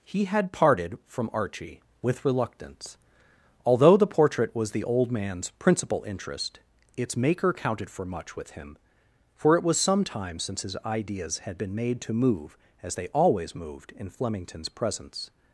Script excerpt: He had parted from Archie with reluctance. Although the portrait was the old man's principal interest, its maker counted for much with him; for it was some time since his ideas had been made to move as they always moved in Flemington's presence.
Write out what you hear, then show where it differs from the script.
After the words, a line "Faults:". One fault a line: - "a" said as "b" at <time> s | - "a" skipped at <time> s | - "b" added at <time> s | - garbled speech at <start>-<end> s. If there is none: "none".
He had parted from Archie with reluctance. Although the portrait was the old man's principal interest, its maker counted for much with him; for it was some time since his ideas had been made to move as they always moved in Flemington's presence.
Faults:
none